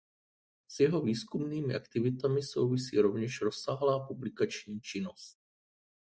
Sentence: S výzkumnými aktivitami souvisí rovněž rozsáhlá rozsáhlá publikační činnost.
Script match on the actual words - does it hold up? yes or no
no